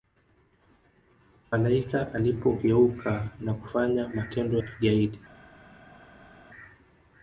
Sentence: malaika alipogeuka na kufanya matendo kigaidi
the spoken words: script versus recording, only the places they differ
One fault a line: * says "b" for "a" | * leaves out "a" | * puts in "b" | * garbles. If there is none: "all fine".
all fine